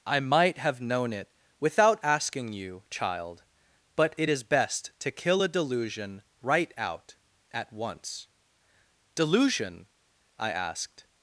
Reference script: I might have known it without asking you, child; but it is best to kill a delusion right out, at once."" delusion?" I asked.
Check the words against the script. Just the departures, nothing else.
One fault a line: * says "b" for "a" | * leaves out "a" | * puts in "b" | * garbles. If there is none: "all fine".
all fine